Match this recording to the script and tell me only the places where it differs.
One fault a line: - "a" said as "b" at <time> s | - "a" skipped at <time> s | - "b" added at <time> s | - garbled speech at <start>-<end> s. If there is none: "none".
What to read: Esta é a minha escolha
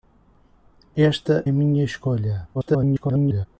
- "é" skipped at 1.4 s
- garbled speech at 2.5-3.5 s